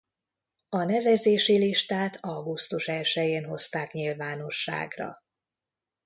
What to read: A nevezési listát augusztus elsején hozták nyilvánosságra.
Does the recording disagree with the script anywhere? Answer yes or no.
no